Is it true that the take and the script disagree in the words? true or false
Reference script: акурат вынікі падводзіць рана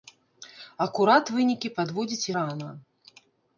false